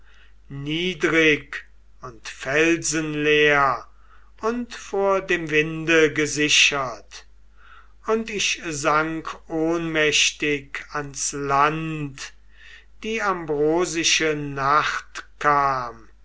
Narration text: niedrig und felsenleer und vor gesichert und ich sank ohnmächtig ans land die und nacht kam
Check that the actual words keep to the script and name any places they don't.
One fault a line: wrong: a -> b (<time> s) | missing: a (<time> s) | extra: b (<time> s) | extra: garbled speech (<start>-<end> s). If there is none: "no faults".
extra: dem winde (5.2 s)
wrong: und -> ambrosische (13.2 s)